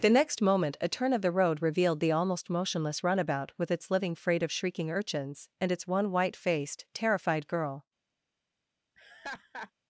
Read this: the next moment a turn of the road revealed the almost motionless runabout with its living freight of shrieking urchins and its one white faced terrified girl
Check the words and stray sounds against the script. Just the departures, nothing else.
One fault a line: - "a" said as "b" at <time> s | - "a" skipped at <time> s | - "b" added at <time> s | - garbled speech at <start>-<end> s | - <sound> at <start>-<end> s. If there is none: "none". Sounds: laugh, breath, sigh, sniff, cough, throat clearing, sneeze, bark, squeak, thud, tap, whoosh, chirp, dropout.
- laugh at 8.9-9.7 s